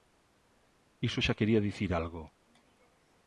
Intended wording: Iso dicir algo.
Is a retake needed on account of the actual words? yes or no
yes